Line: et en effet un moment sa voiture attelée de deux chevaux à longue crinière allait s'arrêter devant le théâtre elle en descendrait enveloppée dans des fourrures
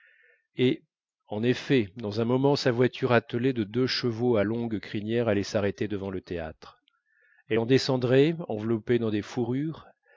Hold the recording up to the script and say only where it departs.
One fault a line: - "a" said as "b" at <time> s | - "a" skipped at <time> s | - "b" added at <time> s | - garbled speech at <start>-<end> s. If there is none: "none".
- "dans" added at 1.9 s